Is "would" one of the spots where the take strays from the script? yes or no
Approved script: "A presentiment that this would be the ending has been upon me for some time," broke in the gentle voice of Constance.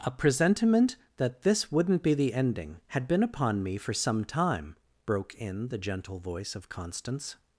yes